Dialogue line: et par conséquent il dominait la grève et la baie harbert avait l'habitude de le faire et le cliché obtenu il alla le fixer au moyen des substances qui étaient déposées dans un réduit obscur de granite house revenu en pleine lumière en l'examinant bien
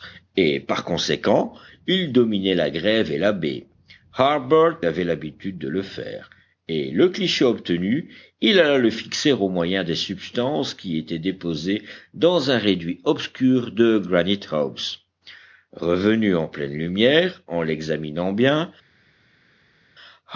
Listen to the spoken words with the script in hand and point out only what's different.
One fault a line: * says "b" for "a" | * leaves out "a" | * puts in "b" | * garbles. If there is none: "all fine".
all fine